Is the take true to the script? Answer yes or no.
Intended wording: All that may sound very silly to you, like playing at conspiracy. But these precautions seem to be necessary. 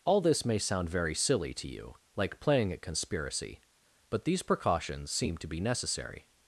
no